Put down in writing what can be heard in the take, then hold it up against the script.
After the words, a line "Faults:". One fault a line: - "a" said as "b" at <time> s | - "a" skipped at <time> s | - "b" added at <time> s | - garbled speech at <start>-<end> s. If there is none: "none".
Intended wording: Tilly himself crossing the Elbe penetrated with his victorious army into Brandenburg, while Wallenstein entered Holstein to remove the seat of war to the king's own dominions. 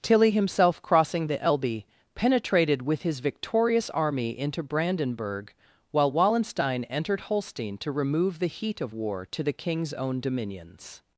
Tilly himself crossing the Elbe penetrated with his victorious army into Brandenburg, while Wallenstein entered Holstein to remove the heat of war to the king's own dominions.
Faults:
- "seat" said as "heat" at 8.5 s